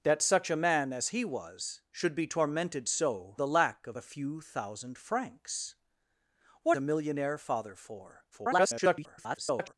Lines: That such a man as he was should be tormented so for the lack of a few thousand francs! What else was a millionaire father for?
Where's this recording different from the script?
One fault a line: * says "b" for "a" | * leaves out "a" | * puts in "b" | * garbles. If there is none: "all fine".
* leaves out "for"
* leaves out "else was"
* garbles